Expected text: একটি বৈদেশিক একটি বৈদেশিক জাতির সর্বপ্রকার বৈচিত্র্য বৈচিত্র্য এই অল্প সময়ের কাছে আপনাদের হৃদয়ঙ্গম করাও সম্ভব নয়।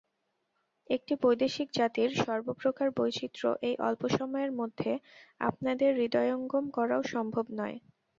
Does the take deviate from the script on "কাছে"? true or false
true